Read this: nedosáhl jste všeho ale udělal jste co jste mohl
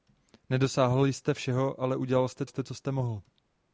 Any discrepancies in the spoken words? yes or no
yes